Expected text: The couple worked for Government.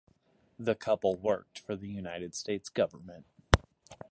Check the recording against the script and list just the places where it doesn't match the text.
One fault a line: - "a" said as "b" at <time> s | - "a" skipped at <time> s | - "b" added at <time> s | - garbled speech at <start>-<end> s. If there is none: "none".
- "the United States" added at 1.8 s